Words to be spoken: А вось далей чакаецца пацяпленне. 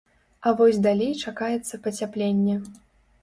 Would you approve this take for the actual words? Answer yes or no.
yes